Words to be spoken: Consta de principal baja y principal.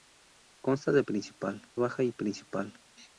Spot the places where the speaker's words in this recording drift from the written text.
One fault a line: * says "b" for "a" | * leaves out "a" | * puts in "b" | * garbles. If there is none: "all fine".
all fine